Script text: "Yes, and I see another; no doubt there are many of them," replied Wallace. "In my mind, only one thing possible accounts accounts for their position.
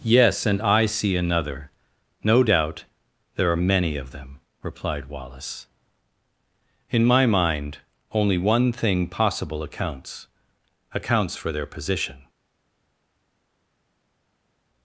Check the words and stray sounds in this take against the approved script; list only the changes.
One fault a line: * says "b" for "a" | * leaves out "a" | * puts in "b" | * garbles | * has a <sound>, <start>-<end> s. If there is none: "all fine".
all fine